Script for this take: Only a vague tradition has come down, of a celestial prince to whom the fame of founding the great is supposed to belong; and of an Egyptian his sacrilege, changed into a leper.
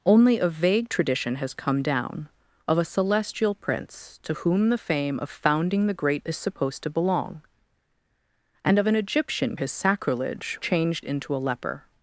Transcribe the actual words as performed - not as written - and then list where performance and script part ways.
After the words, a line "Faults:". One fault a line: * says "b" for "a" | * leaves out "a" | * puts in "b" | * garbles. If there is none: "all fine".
Only a vague tradition has come down, of a celestial prince to whom the fame of founding the great is supposed to belong; and of an Egyptian his sacrilege, changed into a leper.
Faults:
all fine